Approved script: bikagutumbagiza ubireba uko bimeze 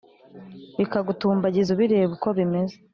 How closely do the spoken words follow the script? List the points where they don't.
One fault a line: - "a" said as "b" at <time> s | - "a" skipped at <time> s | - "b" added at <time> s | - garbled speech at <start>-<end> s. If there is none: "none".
none